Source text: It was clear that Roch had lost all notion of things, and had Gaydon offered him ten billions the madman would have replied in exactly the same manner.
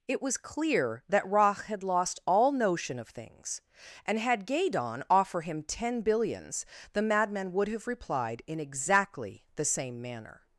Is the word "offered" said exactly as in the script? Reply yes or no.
no